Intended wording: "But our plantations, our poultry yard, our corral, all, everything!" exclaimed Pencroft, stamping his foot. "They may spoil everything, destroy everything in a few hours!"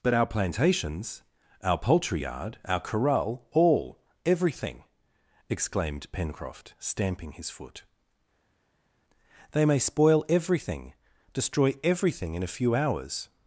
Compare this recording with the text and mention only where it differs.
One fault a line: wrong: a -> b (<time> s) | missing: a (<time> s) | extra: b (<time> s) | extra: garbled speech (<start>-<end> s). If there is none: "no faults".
no faults